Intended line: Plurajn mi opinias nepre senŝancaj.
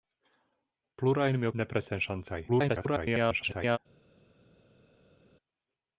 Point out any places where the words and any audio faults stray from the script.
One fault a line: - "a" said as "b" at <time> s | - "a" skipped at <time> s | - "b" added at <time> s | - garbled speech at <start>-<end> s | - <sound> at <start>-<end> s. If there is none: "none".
- "opinias" skipped at 1.5 s
- garbled speech at 2.5-3.8 s